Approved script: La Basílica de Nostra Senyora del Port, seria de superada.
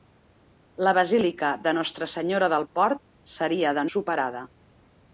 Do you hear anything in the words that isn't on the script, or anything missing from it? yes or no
no